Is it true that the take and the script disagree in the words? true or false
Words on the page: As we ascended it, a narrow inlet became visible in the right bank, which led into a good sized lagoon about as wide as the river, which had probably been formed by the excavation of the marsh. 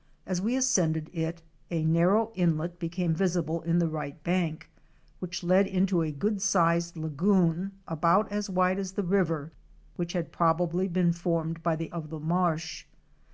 true